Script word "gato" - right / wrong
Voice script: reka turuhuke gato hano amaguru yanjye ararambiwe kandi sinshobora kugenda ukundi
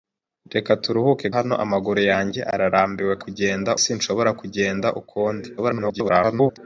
wrong